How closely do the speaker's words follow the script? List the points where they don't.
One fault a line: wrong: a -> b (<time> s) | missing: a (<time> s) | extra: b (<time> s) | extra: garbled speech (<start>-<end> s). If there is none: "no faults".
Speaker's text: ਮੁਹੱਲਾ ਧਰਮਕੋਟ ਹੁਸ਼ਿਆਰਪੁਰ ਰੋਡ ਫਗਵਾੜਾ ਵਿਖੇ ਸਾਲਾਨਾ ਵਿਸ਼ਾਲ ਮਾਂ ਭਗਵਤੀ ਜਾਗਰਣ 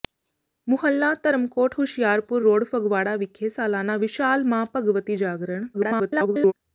extra: garbled speech (5.7-6.5 s)